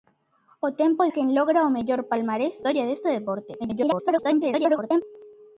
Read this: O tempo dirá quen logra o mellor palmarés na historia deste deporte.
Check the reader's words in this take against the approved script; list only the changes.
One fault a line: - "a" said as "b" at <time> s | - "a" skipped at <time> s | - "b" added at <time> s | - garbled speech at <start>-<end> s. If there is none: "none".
- "dirá" skipped at 1.1 s
- "na" skipped at 2.6 s
- garbled speech at 3.6-5.0 s